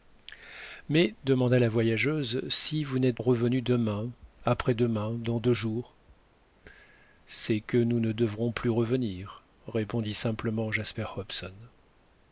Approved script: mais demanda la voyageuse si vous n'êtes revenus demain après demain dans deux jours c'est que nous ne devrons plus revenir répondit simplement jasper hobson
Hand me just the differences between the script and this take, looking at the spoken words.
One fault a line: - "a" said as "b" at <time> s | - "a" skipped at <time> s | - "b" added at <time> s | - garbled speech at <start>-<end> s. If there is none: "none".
none